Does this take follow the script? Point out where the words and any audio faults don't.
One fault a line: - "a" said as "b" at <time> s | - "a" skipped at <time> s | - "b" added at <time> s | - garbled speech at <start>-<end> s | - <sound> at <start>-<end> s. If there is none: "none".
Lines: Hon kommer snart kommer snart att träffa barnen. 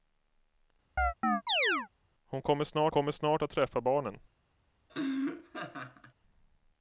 - chirp at 1.0-1.9 s
- laugh at 4.9-6.1 s